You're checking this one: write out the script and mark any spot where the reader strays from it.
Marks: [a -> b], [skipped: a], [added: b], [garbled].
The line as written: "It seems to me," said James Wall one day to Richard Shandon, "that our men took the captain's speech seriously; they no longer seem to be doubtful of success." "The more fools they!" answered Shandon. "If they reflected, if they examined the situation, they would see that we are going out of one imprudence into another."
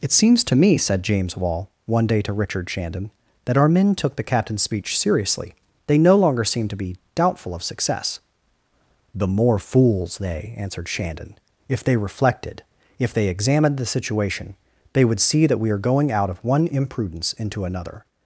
"It seems to me," said James Wall one day to Richard Shandon, "that our men took the captain's speech seriously; they no longer seem to be doubtful of success." "The more fools they!" answered Shandon. "If they reflected, if they examined the situation, they would see that we are going out of one imprudence into another."